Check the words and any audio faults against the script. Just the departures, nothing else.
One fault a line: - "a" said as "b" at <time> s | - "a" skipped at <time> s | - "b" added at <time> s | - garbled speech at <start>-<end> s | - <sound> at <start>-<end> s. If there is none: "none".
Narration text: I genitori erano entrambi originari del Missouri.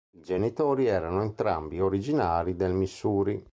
none